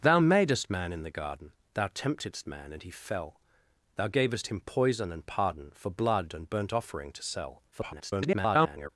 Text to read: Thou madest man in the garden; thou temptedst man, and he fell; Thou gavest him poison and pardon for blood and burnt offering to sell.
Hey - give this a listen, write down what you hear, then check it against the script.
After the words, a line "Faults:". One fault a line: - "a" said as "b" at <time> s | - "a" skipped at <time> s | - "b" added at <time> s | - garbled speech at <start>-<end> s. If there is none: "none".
Thou madest man in the garden; thou temptedst man, and he fell; Thou gavest him poison and pardon for blood and burnt offering to sell. [garbled]
Faults:
- garbled speech at 7.7-8.9 s